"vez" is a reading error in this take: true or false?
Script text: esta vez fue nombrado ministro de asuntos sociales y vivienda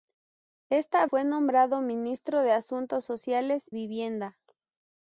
true